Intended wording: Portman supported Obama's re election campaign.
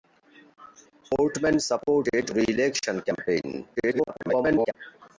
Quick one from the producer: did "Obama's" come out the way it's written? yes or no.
no